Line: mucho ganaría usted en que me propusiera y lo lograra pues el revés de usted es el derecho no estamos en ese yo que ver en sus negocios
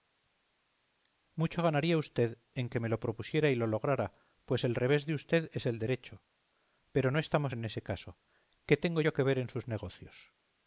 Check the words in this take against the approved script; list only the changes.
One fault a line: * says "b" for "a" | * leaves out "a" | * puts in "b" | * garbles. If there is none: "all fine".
* puts in "lo"
* puts in "pero"
* puts in "caso qué tengo"